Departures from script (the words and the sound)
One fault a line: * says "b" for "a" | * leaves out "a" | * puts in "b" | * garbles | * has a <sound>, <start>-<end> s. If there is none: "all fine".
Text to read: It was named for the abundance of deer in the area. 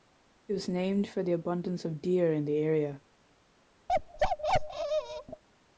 * has a bark, 3.9-5.4 s